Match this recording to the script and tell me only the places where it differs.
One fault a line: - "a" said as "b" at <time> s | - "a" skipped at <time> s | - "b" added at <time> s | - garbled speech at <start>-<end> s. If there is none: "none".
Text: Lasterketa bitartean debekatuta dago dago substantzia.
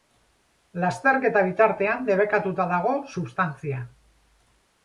- "dago" skipped at 3.0 s